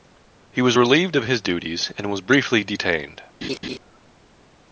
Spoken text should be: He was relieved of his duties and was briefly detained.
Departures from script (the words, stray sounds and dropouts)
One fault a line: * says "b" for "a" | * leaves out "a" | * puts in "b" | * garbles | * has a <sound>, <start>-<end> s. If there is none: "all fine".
* has a laugh, 3.4-3.8 s